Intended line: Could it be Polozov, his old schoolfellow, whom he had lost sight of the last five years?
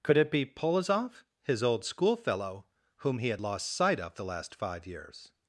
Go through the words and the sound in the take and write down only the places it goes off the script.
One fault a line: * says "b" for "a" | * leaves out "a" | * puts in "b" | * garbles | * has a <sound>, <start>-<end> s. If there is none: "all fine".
all fine